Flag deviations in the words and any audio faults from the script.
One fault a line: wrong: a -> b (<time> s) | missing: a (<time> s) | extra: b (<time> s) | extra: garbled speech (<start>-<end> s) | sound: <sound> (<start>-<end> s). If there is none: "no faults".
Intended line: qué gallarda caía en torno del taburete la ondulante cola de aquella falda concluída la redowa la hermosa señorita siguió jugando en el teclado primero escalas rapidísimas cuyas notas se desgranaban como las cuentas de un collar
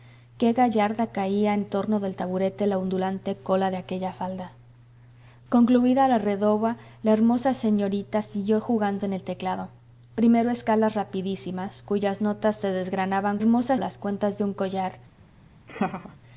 wrong: como -> hermosa (13.4 s)
sound: laugh (15.7-16.2 s)